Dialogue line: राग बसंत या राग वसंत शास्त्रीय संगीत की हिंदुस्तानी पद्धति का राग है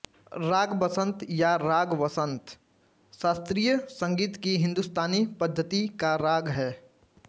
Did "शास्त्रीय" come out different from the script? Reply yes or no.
no